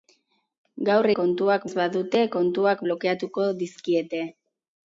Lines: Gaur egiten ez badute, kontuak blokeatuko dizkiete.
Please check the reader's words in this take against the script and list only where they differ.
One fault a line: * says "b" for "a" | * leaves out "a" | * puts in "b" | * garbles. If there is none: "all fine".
* says "kontuak" for "egiten"